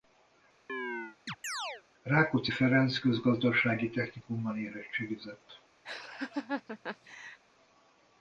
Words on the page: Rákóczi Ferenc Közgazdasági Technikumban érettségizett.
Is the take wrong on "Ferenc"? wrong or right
right